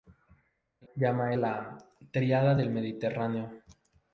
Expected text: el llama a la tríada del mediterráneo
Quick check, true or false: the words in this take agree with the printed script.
true